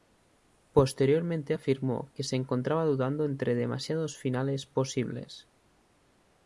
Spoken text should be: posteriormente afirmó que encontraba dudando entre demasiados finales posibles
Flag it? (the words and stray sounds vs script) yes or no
yes